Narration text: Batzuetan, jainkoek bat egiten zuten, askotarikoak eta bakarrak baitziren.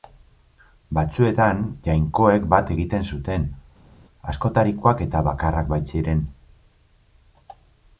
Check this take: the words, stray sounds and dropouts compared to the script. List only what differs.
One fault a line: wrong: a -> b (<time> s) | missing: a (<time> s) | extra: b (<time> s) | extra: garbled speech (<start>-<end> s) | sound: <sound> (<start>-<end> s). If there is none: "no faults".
no faults